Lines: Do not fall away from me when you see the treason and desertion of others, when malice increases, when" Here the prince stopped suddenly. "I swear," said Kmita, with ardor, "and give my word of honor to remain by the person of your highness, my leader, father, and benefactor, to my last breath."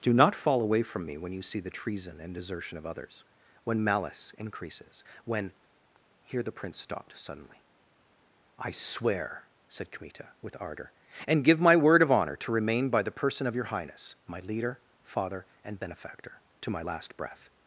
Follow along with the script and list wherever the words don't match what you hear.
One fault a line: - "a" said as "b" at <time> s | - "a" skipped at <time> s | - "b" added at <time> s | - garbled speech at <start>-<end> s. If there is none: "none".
none